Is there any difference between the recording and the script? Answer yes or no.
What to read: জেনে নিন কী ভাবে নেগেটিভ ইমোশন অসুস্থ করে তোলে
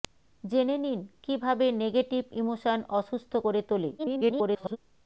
yes